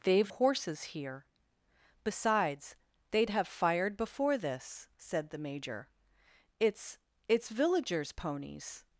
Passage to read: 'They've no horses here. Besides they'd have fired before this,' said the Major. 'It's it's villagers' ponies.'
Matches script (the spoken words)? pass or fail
fail